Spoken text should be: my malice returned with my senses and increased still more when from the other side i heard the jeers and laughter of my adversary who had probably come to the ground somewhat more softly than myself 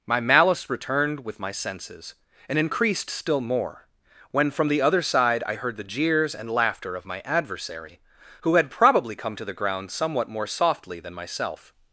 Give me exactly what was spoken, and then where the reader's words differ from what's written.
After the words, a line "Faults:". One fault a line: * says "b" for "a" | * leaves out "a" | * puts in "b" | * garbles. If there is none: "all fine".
my malice returned with my senses and increased still more when from the other side i heard the jeers and laughter of my adversary who had probably come to the ground somewhat more softly than myself
Faults:
all fine